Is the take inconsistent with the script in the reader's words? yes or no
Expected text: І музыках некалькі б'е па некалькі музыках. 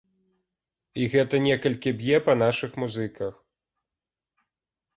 yes